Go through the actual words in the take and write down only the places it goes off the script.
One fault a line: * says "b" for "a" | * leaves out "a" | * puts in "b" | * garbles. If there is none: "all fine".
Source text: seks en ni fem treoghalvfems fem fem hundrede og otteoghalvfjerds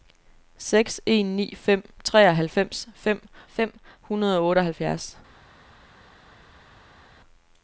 all fine